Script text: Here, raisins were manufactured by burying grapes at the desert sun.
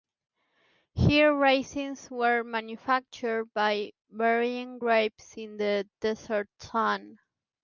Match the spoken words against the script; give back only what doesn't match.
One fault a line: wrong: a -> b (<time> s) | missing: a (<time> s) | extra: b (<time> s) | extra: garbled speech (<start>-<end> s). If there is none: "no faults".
wrong: at -> in (5.4 s)